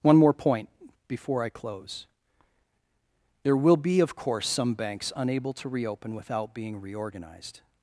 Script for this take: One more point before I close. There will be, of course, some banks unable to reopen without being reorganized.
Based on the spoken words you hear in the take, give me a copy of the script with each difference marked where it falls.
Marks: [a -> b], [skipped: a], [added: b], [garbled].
One more point before I close. There will be, of course, some banks unable to reopen without being reorganized.